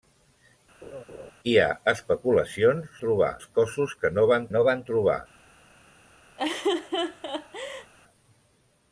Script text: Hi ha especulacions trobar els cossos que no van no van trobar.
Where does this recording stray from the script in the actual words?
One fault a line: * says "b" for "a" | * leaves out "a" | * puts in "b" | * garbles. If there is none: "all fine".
all fine